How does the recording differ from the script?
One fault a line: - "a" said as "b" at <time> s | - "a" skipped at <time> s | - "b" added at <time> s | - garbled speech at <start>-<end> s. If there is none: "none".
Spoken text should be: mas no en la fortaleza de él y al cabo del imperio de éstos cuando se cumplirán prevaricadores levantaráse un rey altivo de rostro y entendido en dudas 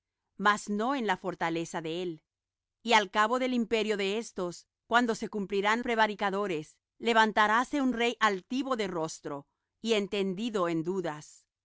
none